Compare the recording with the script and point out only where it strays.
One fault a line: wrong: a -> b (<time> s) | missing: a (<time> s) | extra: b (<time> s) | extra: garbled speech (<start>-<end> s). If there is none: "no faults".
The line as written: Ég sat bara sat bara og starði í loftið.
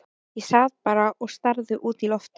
missing: sat bara (1.1 s)
extra: út (1.9 s)